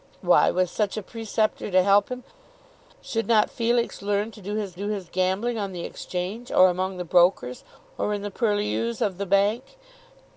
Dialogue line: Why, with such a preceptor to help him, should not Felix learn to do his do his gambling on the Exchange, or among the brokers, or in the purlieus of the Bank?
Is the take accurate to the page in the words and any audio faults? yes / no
yes